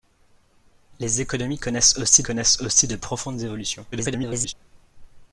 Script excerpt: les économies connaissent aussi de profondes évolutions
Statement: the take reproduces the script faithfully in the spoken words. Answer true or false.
false